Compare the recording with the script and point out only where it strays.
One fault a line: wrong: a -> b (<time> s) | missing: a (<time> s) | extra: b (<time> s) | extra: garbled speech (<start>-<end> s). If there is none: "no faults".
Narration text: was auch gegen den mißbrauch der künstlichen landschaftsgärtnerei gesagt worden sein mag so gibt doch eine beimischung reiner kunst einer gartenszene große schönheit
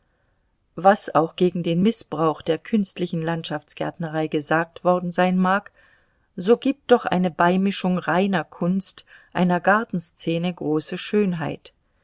no faults